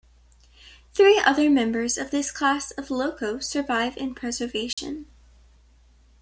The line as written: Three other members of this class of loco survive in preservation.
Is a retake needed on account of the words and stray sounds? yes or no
yes